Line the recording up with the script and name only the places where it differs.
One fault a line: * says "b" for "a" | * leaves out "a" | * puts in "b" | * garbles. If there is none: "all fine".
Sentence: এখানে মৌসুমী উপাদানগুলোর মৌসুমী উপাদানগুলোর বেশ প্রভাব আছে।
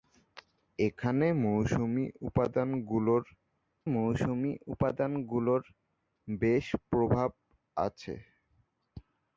all fine